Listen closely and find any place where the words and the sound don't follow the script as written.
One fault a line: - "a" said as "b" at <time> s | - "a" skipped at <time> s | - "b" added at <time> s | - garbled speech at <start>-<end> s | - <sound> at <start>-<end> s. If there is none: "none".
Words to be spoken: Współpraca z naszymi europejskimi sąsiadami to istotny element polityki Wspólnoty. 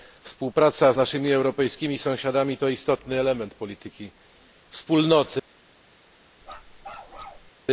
- bark at 6.4-7.5 s